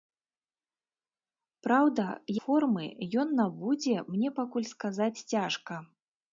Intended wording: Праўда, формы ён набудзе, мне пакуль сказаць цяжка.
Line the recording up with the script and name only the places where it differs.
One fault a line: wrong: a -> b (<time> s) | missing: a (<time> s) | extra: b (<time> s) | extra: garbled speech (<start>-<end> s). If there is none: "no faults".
no faults